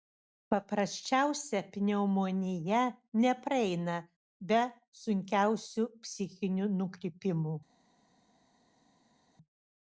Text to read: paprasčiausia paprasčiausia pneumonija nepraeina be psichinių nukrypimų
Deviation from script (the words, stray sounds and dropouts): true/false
true